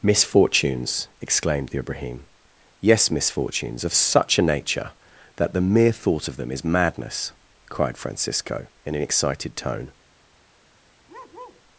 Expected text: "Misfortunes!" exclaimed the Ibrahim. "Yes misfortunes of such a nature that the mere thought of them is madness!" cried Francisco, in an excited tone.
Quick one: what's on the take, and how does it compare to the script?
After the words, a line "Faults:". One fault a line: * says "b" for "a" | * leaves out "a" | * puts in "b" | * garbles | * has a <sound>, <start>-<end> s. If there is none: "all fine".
"Misfortunes!" exclaimed the Ibrahim. "Yes misfortunes of such a nature that the mere thought of them is madness!" cried Francisco, in an excited tone.
Faults:
* has a bark, 11.1-11.6 s